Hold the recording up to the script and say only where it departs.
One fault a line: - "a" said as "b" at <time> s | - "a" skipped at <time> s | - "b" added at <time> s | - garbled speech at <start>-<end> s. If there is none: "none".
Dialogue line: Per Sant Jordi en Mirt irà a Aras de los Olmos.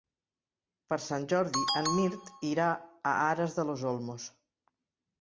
none